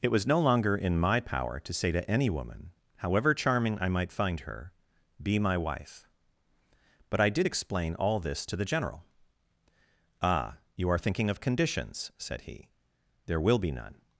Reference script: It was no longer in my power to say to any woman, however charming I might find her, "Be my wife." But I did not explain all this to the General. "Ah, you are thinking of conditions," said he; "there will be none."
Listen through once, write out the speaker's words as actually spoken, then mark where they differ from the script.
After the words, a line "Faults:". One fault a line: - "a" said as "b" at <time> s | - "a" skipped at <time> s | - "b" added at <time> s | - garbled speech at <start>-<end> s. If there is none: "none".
It was no longer in my power to say to any woman, however charming I might find her, "Be my wife." But I did explain all this to the General. "Ah, you are thinking of conditions," said he; "there will be none."
Faults:
- "not" skipped at 7.5 s